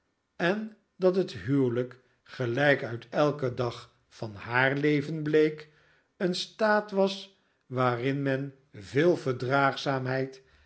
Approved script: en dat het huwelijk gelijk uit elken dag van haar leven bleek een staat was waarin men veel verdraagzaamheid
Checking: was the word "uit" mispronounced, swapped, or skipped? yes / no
no